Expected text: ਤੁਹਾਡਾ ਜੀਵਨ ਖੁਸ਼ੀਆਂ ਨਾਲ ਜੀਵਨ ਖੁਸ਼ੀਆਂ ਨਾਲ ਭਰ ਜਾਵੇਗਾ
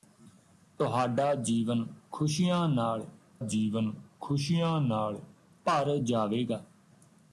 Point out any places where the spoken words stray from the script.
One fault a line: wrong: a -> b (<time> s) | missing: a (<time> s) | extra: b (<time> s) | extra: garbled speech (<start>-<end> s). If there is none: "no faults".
no faults